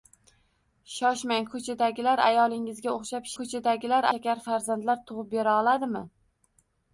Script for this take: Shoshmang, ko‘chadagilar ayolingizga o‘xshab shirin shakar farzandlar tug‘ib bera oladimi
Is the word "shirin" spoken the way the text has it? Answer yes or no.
no